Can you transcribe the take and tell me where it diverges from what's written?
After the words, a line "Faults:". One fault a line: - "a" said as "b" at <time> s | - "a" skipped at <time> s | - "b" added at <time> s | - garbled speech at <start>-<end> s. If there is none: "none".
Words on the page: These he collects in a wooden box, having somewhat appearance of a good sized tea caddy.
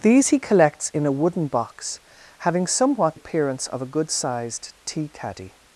These he collects in a wooden box, having somewhat appearance of a good sized tea caddy.
Faults:
none